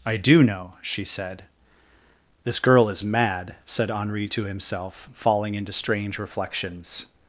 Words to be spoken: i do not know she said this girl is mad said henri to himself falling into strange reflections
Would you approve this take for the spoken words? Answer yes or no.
no